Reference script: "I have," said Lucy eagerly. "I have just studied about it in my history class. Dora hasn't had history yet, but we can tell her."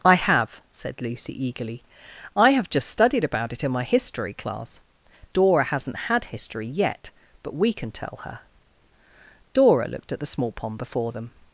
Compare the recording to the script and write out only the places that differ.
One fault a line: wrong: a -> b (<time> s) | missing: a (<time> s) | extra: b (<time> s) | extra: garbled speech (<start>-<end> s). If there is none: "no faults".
extra: Dora looked at the small pond before them (9.5 s)